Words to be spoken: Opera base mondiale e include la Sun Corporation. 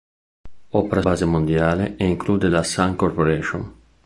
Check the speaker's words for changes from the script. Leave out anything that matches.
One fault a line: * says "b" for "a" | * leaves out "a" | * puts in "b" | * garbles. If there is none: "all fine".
all fine